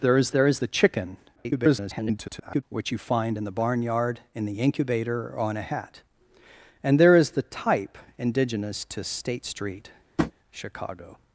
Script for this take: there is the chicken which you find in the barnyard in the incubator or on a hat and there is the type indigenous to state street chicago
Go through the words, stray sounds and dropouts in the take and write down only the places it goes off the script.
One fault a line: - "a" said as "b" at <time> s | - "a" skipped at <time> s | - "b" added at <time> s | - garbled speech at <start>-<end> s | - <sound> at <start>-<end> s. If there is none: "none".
- "there is" added at 0.3 s
- garbled speech at 1.4-2.6 s
- tap at 10.2-10.3 s